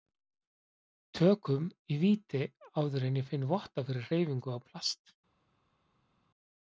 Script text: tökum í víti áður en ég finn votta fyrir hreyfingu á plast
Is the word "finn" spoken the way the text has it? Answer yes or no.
yes